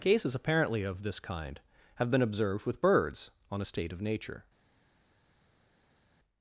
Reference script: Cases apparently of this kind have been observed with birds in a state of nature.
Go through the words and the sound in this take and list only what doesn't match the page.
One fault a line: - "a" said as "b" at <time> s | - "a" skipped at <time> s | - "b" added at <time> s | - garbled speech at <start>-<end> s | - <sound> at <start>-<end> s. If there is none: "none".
- "in" said as "on" at 3.5 s